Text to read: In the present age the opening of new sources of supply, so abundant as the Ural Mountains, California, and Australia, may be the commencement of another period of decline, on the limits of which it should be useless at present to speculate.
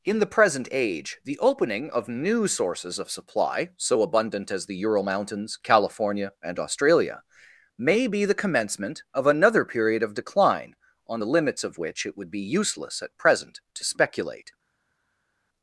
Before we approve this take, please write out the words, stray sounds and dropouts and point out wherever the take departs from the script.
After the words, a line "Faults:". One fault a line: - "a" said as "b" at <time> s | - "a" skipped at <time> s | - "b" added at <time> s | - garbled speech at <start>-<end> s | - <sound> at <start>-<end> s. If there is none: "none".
In the present age the opening of new sources of supply, so abundant as the Ural Mountains, California, and Australia, may be the commencement of another period of decline, on the limits of which it would be useless at present to speculate.
Faults:
- "should" said as "would" at 12.2 s